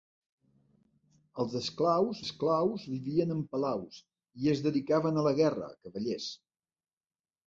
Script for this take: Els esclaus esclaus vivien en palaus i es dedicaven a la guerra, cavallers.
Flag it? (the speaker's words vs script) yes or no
no